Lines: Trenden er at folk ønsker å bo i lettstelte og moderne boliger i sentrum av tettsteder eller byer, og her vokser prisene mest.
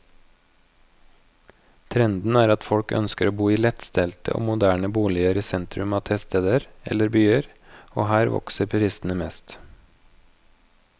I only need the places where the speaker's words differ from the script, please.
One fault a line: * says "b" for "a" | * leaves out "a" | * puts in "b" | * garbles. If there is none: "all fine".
all fine